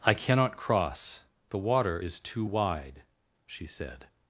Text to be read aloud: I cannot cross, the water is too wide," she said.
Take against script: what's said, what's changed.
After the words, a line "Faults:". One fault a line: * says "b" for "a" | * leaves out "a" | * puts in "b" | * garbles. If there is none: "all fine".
I cannot cross, the water is too wide," she said.
Faults:
all fine